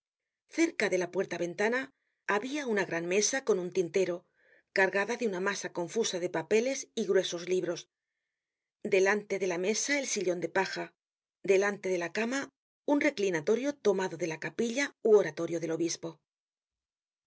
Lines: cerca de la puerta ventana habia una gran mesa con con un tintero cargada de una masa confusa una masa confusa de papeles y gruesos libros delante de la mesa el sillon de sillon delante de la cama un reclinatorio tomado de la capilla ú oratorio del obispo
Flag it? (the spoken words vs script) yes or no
yes